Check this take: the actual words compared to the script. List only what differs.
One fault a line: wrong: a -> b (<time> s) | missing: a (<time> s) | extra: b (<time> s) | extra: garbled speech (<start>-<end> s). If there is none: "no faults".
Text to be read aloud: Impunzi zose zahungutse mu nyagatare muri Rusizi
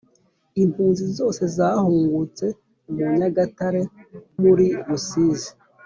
no faults